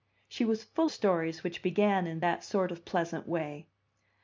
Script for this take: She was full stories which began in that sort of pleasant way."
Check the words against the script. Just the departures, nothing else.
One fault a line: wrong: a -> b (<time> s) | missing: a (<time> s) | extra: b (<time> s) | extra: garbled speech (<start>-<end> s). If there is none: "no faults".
no faults